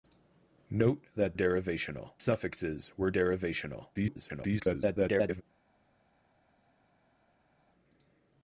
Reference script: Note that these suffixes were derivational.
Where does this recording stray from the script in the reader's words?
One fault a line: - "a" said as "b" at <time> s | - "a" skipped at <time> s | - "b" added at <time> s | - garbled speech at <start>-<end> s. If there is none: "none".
- "these" said as "derivational" at 1.3 s
- garbled speech at 3.9-5.4 s